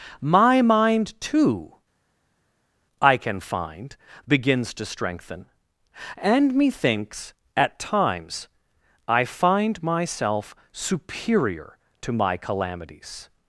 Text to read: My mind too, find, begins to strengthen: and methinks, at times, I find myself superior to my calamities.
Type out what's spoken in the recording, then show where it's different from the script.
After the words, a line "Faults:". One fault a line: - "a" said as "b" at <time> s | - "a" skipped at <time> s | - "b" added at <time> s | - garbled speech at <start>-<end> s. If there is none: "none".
My mind too, I can find, begins to strengthen: and methinks, at times, I find myself superior to my calamities.
Faults:
- "I can" added at 3.0 s